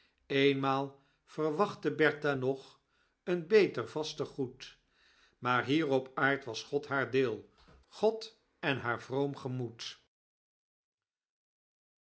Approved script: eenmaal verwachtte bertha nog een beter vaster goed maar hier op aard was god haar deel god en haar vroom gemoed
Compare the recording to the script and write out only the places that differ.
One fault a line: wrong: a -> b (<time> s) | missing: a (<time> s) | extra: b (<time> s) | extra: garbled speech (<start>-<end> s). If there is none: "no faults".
no faults